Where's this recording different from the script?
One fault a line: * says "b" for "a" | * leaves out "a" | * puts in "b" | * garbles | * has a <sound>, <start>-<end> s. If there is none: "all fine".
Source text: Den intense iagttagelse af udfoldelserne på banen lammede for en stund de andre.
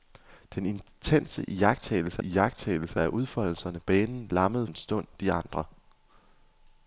* puts in "iagttagelse"
* leaves out "på"
* leaves out "for"